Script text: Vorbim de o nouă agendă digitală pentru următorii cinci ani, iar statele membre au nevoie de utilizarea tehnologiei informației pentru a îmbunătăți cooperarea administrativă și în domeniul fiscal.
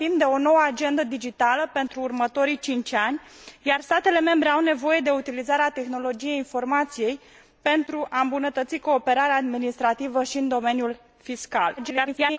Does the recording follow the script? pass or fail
fail